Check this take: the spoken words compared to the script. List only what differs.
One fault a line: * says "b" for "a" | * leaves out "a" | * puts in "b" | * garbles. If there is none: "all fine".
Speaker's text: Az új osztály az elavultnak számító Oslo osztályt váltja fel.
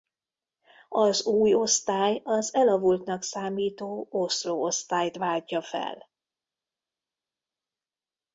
all fine